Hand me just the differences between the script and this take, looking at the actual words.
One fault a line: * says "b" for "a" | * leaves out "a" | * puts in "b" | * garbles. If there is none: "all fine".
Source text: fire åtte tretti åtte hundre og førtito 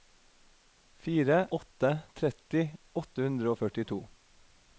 all fine